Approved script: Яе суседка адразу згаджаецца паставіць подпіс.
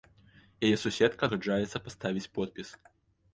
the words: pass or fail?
fail